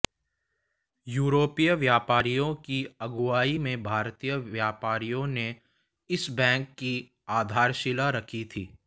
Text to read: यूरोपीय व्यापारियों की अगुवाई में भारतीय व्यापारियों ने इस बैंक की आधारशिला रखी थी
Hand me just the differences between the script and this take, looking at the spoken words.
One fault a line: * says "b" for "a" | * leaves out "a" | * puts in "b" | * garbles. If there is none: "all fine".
all fine